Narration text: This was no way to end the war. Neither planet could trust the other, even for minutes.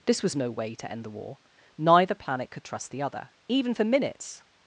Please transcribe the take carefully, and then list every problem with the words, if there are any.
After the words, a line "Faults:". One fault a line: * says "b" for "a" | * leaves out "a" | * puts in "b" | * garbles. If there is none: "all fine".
This was no way to end the war. Neither planet could trust the other, even for minutes.
Faults:
all fine